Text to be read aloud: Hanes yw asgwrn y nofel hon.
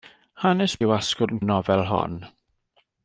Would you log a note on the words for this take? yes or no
no